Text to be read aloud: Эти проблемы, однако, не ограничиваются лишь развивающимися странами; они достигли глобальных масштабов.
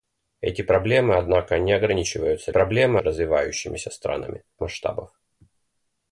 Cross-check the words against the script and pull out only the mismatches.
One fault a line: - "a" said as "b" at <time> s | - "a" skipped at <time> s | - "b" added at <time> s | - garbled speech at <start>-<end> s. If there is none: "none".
- "лишь" said as "проблемы" at 2.5 s
- "они достигли глобальных" skipped at 4.4 s